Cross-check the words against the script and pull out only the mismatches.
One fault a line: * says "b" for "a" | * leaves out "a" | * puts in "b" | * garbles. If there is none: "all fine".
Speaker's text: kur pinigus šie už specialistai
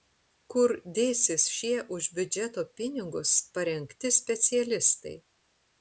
* says "dėsis" for "pinigus"
* puts in "biudžeto pinigus parengti"